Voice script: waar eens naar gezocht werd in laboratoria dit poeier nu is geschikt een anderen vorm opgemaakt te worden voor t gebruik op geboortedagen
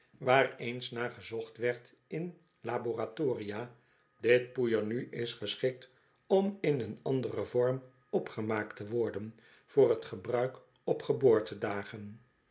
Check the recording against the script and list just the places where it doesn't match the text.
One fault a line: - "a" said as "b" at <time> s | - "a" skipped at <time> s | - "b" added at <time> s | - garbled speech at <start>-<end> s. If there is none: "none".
- "om in" added at 6.3 s